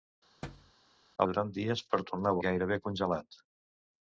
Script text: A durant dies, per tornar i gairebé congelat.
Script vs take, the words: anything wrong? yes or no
no